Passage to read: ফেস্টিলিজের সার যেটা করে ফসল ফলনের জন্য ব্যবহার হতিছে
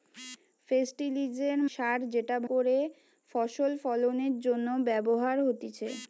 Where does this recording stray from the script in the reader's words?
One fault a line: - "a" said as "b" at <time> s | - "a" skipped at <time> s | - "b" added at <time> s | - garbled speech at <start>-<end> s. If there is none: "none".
none